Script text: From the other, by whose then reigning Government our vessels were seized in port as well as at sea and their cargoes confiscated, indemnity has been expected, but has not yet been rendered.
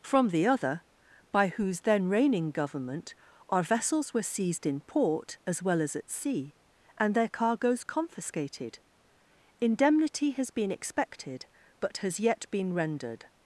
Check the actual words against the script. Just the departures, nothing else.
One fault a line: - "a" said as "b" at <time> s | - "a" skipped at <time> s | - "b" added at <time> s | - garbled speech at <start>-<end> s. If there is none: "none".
- "not" skipped at 12.2 s